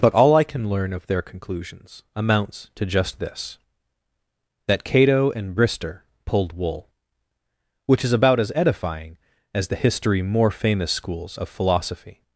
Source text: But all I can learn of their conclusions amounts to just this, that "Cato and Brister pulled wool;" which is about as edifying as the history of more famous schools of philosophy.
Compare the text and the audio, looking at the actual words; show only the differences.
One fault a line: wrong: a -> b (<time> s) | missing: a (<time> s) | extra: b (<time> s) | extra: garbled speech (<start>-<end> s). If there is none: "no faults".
missing: of (10.2 s)